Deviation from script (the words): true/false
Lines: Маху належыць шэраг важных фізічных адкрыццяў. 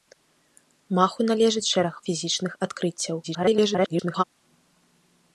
true